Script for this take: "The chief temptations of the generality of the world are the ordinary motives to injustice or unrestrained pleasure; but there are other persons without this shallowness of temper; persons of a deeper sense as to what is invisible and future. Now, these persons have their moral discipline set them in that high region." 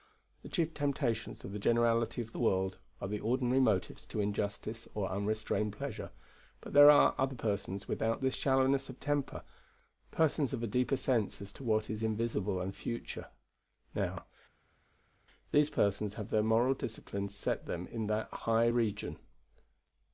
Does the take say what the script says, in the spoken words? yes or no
yes